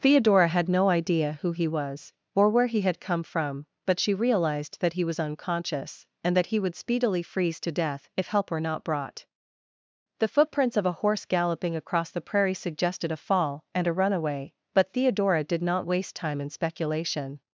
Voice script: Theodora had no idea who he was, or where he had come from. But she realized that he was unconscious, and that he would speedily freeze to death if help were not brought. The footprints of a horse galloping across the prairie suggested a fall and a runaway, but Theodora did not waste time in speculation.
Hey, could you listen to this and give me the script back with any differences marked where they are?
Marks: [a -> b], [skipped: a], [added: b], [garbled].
Theodora had no idea who he was, or where he had come from. But she realized that he was unconscious, and that he would speedily freeze to death if help were not brought. The footprints of a horse galloping across the prairie suggested a fall and a runaway, but Theodora did not waste time in speculation.